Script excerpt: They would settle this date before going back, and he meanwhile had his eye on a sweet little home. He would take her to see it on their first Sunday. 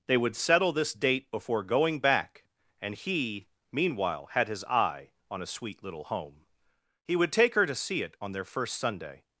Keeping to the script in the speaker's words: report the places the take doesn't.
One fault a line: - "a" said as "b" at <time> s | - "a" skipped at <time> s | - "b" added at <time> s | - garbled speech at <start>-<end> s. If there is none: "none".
none